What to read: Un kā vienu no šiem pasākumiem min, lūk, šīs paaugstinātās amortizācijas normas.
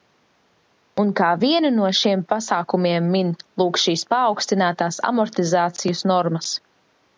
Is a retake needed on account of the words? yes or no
no